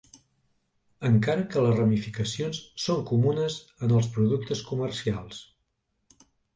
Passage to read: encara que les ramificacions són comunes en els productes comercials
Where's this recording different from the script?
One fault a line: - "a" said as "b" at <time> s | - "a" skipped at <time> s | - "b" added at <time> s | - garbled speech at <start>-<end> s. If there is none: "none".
none